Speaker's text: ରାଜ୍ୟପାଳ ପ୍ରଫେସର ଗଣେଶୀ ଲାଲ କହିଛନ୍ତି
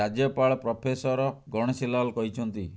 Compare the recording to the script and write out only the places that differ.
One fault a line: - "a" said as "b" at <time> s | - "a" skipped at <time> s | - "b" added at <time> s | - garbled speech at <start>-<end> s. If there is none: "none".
none